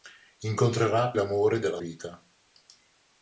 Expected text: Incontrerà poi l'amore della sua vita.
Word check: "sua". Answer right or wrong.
wrong